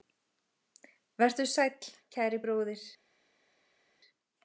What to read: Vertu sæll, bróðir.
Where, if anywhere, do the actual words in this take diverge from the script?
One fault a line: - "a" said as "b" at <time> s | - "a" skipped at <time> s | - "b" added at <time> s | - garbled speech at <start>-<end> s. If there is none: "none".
- "kæri" added at 2.2 s